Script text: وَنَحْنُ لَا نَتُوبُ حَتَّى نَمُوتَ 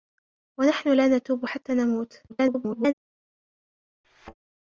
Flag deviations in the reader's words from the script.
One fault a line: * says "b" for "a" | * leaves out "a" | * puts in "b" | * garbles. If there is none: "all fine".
* garbles